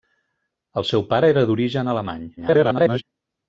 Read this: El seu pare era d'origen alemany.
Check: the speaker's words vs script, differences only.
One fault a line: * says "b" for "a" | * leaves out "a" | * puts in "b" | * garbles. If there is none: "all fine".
* garbles